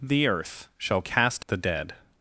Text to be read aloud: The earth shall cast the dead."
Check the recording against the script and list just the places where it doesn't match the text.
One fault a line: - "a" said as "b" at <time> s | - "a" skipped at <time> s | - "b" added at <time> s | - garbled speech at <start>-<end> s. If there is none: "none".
none